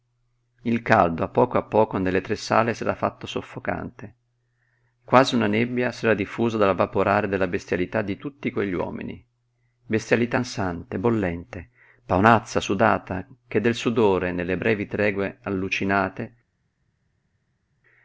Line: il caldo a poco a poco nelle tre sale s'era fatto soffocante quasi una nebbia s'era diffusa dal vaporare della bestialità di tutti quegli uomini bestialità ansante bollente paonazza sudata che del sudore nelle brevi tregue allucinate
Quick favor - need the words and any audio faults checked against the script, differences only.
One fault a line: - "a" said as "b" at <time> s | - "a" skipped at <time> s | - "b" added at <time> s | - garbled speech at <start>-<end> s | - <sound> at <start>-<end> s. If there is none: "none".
none